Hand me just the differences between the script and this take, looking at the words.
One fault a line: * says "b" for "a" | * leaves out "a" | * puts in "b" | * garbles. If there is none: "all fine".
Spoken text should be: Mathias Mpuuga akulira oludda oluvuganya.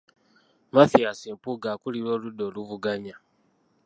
all fine